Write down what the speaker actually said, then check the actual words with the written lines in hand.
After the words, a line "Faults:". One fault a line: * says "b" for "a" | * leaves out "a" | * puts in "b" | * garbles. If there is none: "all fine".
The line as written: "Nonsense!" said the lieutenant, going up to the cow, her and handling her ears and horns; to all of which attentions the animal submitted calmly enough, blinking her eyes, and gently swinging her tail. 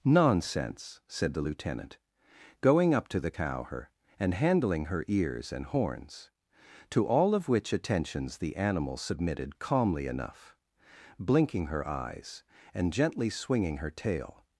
"Nonsense!" said the lieutenant, going up to the cow, her and handling her ears and horns; to all of which attentions the animal submitted calmly enough, blinking her eyes, and gently swinging her tail.
Faults:
all fine